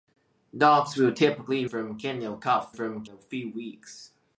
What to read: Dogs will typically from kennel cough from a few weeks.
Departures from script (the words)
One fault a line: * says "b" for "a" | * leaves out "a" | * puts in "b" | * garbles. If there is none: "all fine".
all fine